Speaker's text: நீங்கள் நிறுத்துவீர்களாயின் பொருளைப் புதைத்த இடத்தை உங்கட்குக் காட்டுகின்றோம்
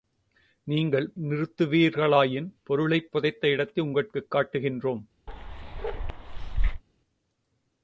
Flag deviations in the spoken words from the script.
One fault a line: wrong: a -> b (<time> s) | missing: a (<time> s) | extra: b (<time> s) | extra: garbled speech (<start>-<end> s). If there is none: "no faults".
no faults